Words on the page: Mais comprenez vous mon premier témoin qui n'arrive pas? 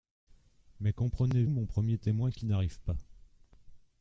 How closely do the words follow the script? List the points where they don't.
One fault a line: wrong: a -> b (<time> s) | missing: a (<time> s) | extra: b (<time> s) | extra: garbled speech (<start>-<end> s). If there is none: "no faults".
missing: vous (1.4 s)